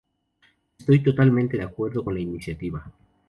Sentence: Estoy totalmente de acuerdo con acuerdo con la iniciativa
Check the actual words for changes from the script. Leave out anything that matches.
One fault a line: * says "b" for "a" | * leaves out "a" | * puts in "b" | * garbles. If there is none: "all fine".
* leaves out "acuerdo con"